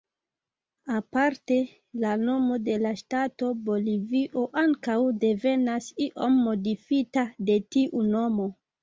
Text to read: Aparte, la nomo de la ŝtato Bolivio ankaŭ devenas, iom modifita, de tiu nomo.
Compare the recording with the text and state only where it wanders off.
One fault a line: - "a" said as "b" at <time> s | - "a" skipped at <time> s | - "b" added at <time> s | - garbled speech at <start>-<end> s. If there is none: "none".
none